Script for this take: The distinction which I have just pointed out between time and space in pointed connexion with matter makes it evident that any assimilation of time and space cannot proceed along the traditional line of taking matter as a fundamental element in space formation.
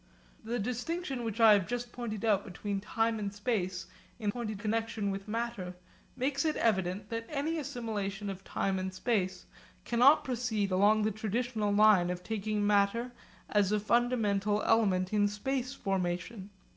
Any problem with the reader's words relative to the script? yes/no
no